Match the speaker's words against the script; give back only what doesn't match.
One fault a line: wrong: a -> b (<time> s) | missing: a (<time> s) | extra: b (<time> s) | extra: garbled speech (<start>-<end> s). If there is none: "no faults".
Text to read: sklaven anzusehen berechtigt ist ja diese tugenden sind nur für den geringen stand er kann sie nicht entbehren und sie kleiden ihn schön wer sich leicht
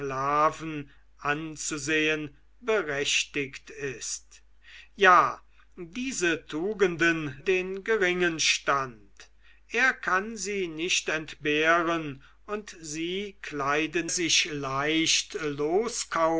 missing: sind nur für (7.4 s)
missing: ihn schön wer (14.1 s)